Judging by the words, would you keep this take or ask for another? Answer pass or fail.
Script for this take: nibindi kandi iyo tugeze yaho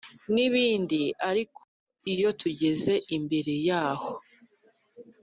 fail